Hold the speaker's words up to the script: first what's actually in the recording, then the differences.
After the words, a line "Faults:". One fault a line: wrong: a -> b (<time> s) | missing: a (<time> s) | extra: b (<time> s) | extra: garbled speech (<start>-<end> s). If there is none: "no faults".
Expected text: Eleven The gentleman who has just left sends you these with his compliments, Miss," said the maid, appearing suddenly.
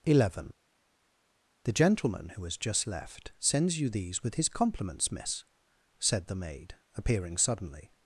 Eleven The gentleman who has just left sends you these with his compliments, Miss," said the maid, appearing suddenly.
Faults:
no faults